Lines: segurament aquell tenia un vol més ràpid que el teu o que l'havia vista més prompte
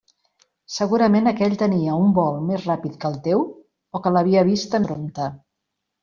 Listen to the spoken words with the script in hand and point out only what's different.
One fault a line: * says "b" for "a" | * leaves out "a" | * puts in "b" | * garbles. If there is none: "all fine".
* leaves out "més"